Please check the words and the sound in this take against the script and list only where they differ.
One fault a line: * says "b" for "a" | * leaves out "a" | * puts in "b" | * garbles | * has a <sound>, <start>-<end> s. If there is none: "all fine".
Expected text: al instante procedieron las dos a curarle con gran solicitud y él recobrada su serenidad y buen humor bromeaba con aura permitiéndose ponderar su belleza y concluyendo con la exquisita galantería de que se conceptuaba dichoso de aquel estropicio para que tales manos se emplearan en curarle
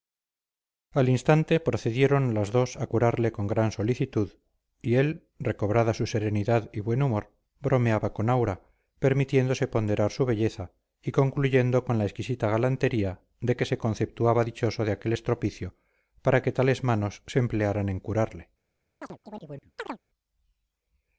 * has a chirp, 19.0-20.0 s